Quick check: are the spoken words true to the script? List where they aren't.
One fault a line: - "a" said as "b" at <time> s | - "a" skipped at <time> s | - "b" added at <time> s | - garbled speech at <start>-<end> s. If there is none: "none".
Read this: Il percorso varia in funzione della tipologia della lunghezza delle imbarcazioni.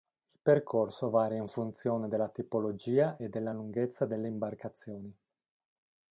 - "e" added at 3.1 s